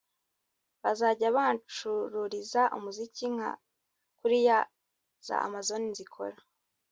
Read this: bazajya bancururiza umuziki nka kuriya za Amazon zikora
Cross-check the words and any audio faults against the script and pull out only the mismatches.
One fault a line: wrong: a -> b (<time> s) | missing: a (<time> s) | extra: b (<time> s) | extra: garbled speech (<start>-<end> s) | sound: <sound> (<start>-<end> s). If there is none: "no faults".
no faults